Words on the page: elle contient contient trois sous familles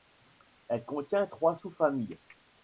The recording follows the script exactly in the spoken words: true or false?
false